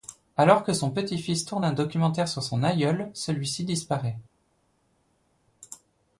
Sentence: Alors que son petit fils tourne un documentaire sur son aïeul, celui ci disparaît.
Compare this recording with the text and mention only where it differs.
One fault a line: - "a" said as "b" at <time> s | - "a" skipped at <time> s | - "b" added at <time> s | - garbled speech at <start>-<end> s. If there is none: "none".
none